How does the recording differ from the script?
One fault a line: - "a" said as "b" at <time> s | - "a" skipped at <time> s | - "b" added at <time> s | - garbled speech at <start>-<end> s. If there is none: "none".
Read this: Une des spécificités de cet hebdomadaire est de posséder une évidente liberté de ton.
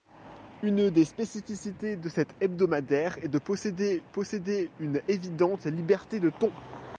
- "posséder" added at 4.0 s